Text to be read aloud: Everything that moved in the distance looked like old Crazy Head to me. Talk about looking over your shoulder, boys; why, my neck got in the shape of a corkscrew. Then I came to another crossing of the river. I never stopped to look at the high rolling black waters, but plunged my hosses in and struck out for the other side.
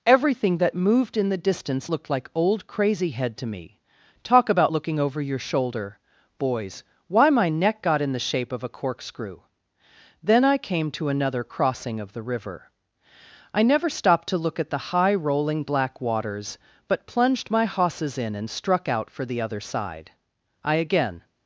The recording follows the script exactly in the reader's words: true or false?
false